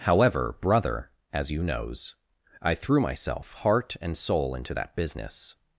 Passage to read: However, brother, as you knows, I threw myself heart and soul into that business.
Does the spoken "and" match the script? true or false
true